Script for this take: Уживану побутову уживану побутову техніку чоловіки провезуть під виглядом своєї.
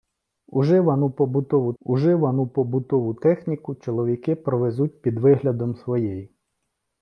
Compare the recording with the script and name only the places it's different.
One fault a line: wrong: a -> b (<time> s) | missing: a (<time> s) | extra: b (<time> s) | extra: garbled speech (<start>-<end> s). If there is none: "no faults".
no faults